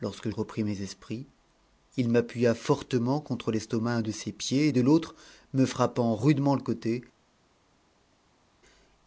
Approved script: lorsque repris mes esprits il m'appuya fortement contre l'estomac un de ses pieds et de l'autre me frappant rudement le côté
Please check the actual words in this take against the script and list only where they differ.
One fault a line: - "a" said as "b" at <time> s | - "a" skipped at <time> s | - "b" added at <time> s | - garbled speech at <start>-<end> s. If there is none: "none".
none